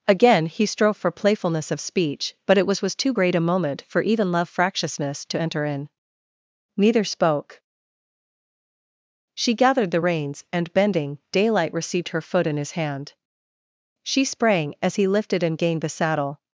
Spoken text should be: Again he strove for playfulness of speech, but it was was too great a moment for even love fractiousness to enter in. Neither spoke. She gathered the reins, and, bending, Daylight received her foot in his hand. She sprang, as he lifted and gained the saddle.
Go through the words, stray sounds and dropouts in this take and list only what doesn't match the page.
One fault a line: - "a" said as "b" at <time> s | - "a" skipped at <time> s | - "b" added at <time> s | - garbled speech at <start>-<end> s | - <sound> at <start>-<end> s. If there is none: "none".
none